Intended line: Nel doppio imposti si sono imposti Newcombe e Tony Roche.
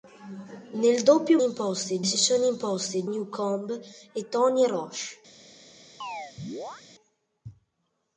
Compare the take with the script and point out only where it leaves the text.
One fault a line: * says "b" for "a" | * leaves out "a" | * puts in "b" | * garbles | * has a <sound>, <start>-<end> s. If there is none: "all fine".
* has a chirp, 6.0-6.8 s